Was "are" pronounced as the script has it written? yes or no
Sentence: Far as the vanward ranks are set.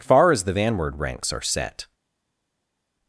yes